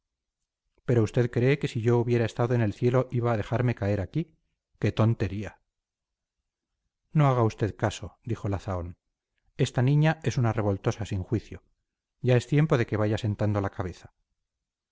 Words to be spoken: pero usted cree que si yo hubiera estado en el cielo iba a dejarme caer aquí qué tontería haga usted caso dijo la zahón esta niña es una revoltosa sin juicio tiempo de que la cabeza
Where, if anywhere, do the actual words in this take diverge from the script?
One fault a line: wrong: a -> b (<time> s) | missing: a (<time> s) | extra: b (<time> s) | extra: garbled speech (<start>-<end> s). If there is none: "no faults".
extra: no (7.1 s)
extra: ya es (12.2 s)
extra: vaya sentando (13.0 s)